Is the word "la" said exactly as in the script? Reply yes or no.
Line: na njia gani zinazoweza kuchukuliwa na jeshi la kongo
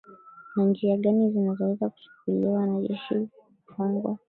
no